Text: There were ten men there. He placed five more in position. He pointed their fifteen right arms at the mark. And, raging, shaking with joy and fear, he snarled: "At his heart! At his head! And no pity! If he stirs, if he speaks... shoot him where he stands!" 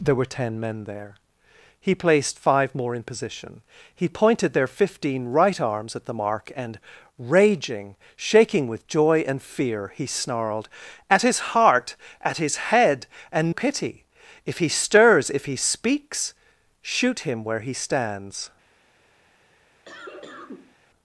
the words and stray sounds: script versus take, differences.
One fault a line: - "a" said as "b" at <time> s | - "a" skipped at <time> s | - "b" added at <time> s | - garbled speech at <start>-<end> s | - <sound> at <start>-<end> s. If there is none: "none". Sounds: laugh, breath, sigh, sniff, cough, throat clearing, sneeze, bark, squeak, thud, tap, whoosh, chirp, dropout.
- "no" skipped at 13.5 s
- cough at 19.8-20.8 s